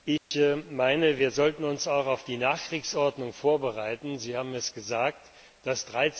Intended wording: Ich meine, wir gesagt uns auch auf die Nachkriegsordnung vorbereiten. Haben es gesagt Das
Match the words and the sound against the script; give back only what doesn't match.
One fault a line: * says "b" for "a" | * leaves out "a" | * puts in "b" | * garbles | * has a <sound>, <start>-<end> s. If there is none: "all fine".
* has a dropout, 0.2-0.3 s
* says "sollten" for "gesagt"
* puts in "Sie"